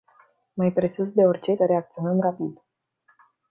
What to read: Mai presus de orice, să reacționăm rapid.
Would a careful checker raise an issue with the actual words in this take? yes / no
no